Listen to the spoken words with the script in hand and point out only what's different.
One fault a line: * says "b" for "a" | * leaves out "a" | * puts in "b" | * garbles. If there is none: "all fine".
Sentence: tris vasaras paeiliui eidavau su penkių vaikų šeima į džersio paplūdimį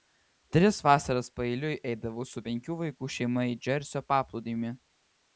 all fine